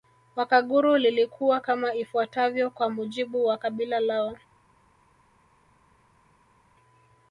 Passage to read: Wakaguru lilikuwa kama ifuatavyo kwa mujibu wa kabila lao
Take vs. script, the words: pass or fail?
pass